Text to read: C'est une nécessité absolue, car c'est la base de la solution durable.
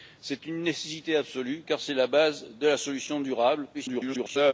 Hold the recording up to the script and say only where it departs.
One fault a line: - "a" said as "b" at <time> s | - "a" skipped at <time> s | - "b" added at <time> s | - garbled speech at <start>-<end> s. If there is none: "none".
- garbled speech at 3.7-4.5 s